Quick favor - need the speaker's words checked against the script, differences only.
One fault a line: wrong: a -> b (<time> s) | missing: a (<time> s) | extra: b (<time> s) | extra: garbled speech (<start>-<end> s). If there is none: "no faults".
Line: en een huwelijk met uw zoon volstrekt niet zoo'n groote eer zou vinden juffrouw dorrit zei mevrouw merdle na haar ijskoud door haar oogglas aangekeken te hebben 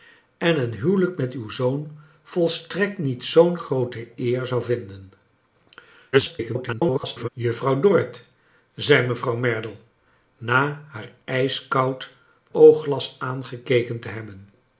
extra: garbled speech (6.1-7.3 s)
missing: door haar (12.1 s)